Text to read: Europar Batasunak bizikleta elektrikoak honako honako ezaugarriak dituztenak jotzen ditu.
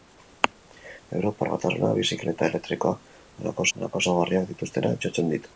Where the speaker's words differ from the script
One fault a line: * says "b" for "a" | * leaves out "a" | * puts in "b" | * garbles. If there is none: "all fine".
all fine